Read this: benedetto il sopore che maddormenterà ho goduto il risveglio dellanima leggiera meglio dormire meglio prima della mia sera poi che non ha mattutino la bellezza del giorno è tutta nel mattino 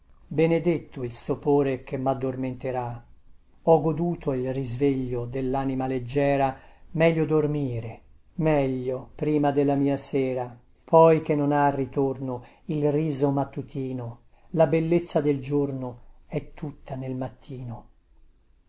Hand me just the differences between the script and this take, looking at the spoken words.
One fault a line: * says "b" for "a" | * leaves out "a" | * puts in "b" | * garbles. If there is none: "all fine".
* puts in "ritorno il riso"